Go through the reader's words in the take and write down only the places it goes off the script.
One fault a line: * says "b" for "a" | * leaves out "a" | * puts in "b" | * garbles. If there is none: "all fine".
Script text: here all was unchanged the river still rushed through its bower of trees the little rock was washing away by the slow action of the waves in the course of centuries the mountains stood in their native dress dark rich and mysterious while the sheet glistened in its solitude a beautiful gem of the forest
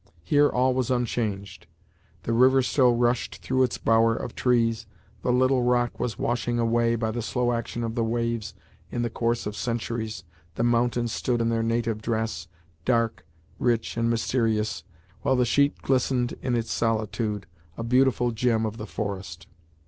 all fine